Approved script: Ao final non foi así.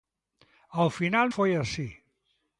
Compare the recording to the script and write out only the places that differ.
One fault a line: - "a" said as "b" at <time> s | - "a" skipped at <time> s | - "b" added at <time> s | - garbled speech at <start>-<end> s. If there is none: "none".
- "non" skipped at 1.3 s